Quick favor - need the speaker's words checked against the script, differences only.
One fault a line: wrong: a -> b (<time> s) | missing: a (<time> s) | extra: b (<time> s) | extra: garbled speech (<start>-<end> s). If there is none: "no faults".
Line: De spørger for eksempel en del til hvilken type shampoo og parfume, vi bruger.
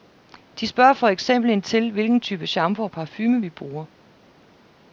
missing: del (1.6 s)